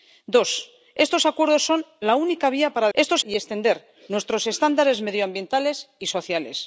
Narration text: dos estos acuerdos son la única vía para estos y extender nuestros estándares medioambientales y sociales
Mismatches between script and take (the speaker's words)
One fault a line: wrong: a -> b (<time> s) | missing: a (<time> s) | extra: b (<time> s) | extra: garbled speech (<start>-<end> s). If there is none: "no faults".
no faults